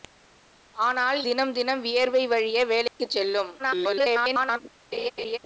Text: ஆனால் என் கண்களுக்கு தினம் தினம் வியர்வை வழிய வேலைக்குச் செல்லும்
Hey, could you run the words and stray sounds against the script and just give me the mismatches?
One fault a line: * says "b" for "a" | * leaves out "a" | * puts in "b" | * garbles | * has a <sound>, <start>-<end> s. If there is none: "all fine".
* leaves out "என் கண்களுக்கு"
* has a dropout, 2.9-3.0 s
* garbles
* has a laugh, 4.9-5.4 s